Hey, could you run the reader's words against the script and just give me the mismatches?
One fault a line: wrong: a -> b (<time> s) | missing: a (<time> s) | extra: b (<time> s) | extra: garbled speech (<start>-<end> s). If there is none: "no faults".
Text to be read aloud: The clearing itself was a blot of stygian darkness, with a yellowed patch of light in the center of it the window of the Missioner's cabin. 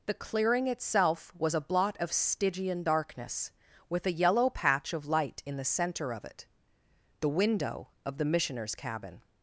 wrong: yellowed -> yellow (4.1 s)